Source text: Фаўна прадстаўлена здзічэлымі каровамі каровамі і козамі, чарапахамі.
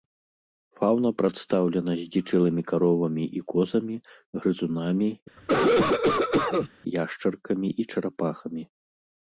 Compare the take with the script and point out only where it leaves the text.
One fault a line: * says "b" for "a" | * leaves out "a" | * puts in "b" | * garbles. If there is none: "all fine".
* leaves out "каровамі"
* puts in "грызунамі яшчаркамі і"